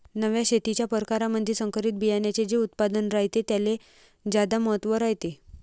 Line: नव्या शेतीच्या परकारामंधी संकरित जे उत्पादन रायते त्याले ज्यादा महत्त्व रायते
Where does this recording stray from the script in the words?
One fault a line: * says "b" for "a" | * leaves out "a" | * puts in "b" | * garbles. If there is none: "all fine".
* puts in "बियान्याचे"